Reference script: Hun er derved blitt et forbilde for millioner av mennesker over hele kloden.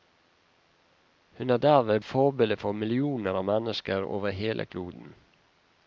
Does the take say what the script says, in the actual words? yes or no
no